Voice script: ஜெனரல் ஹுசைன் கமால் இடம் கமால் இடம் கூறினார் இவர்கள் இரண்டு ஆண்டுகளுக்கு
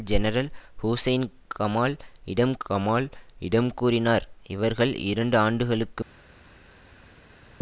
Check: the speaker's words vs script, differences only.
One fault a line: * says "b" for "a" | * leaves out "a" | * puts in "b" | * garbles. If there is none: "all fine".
all fine